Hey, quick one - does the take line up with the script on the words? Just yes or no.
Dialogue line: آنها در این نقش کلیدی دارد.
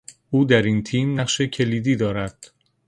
no